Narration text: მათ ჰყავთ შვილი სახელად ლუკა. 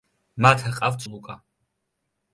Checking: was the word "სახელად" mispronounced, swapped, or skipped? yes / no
yes